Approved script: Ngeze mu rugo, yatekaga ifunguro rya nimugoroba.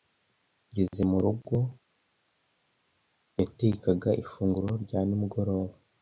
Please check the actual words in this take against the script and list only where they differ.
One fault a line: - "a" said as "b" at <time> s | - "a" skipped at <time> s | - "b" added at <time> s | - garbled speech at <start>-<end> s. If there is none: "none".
none